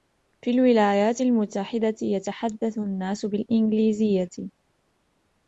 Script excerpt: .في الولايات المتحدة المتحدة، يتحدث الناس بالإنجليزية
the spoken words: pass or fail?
fail